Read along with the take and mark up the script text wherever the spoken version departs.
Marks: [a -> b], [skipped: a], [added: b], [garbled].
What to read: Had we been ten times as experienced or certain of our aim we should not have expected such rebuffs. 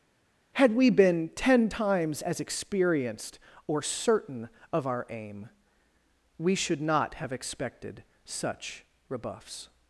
Had we been ten times as experienced or certain of our aim we should not have expected such rebuffs.